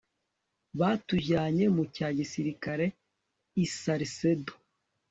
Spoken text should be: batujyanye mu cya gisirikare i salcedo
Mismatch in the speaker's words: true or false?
false